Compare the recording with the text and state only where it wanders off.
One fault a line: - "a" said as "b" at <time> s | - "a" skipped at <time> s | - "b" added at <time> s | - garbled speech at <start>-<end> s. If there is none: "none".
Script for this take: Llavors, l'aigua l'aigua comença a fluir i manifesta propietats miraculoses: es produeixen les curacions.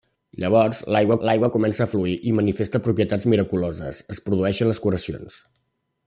none